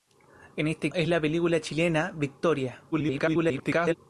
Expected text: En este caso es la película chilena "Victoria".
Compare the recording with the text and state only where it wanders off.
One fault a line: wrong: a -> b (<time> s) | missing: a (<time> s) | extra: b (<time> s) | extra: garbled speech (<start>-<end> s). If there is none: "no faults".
missing: caso (0.9 s)
extra: garbled speech (2.9-3.9 s)